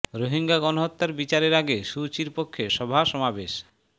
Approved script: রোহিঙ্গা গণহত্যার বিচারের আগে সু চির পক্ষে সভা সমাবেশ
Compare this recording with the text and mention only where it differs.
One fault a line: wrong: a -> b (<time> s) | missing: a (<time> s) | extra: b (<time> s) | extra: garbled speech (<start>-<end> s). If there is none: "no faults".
no faults